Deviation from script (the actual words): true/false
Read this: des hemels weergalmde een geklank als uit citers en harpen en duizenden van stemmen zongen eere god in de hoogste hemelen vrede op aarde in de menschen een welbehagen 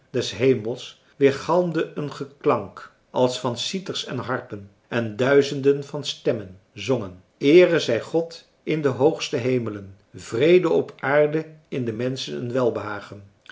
true